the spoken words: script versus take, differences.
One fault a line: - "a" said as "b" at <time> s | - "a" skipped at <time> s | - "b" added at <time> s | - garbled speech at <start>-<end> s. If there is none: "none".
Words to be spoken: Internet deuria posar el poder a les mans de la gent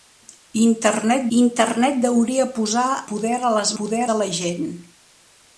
- "internet" added at 1.3 s
- "el" skipped at 2.9 s
- "mans" said as "poder" at 3.8 s